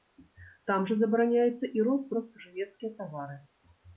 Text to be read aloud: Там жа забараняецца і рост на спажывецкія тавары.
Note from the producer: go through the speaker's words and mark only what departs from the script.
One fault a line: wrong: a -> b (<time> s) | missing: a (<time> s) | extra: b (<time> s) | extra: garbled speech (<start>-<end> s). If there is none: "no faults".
no faults